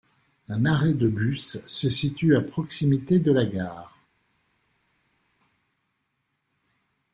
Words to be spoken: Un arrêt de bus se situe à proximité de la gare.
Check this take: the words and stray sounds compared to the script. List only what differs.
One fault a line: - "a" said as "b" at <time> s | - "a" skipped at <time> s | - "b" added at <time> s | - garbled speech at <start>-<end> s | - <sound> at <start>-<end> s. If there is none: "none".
none